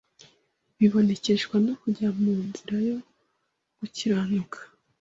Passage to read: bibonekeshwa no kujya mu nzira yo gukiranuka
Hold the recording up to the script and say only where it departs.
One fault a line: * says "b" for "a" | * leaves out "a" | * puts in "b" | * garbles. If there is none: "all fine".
all fine